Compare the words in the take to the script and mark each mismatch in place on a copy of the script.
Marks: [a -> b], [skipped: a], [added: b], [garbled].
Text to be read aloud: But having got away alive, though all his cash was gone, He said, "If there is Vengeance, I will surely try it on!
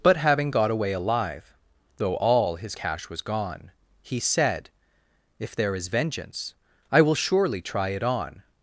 But having got away alive, though all his cash was gone, He said, "If there is Vengeance, I will surely try it on!